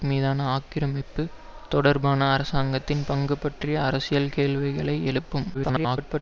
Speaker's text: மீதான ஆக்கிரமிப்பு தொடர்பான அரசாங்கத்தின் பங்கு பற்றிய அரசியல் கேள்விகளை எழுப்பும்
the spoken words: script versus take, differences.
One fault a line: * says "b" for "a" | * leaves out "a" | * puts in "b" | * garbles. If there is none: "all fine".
* garbles